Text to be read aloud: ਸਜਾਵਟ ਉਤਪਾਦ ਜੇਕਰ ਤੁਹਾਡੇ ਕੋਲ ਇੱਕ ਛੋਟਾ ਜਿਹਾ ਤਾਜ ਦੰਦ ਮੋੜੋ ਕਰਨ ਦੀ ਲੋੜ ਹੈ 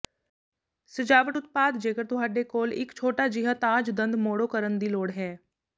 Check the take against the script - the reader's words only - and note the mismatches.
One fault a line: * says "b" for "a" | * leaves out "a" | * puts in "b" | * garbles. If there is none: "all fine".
all fine